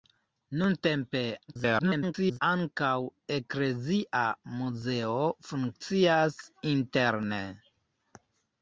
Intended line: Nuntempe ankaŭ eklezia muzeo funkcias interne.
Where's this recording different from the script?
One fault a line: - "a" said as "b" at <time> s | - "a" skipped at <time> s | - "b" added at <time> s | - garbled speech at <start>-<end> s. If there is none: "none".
- garbled speech at 1.5-2.4 s